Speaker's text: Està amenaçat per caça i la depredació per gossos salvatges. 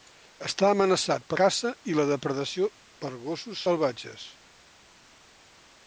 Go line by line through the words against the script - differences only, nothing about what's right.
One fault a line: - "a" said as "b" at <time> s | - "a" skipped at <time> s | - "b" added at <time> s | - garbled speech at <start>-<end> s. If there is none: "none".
none